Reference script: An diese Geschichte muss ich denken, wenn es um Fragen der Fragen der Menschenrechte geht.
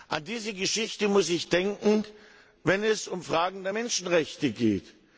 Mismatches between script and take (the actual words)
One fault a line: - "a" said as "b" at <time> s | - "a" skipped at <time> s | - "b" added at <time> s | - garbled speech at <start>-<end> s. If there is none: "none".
- "Fragen der" skipped at 3.7 s